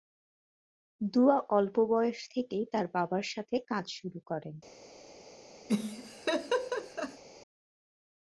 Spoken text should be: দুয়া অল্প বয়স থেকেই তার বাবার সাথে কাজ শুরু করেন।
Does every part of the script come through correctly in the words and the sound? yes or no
no